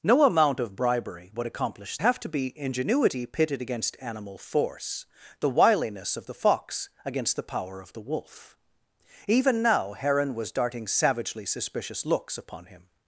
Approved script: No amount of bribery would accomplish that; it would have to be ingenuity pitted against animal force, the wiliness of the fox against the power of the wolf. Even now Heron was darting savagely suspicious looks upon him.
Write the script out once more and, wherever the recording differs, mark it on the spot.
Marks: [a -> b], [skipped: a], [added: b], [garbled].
No amount of bribery would accomplish [skipped: that; it would] have to be ingenuity pitted against animal force, the wiliness of the fox against the power of the wolf. Even now Heron was darting savagely suspicious looks upon him.